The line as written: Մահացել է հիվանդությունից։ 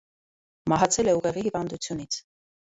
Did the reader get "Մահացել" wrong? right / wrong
right